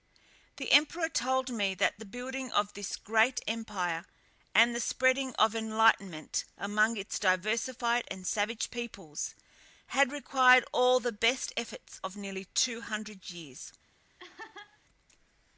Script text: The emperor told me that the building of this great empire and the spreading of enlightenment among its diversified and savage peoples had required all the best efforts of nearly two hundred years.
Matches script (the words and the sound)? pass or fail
fail